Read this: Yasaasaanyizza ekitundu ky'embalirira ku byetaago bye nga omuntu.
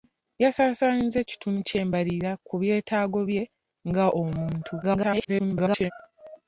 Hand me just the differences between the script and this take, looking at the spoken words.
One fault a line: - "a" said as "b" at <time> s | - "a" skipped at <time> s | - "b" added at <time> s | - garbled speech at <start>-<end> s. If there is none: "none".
- garbled speech at 4.8-5.9 s